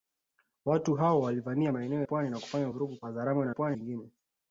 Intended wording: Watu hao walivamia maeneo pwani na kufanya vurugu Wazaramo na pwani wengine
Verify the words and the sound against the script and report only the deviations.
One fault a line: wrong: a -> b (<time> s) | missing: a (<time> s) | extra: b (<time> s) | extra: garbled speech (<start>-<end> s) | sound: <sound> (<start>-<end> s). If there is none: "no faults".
no faults